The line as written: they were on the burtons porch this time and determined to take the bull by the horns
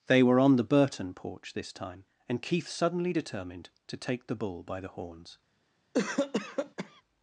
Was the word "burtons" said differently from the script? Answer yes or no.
yes